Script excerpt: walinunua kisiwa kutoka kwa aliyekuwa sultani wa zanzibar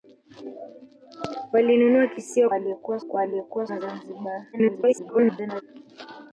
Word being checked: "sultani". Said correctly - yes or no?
no